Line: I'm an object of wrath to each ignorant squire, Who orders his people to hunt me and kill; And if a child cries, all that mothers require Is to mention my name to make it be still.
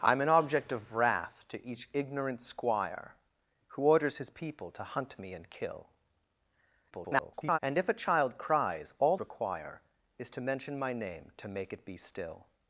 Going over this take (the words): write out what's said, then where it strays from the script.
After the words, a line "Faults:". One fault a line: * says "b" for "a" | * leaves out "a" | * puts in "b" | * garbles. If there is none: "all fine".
I'm an object of wrath to each ignorant squire, Who orders his people to hunt me and kill; [garbled] And if a child cries, all require Is to mention my name to make it be still.
Faults:
* garbles
* leaves out "that mothers"